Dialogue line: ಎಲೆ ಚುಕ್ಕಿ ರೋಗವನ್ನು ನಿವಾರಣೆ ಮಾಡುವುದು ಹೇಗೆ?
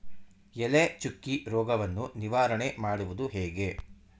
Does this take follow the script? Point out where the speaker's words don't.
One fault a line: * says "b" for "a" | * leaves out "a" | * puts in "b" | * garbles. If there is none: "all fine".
all fine